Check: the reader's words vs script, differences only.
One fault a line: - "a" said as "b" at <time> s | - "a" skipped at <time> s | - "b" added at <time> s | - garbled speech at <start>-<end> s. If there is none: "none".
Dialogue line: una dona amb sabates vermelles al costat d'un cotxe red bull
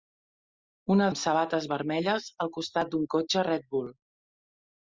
- "dona" skipped at 1.1 s